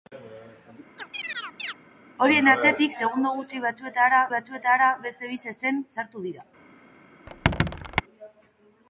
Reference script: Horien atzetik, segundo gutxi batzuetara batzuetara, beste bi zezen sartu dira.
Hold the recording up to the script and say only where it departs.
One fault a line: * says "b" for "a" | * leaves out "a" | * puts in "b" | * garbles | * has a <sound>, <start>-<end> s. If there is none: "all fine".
* has a chirp, 1.0-1.8 s
* has a squeak, 7.3-8.0 s